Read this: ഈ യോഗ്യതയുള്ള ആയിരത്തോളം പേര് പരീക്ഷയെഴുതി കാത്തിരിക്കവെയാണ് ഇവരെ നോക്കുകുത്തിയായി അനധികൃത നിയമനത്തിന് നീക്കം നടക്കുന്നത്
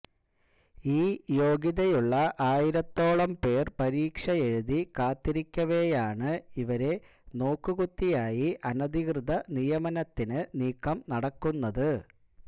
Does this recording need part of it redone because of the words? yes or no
no